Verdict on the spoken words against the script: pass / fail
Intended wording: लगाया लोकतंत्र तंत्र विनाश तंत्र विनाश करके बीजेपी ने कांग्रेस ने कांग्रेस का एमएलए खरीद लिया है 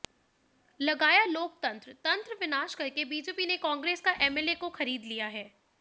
fail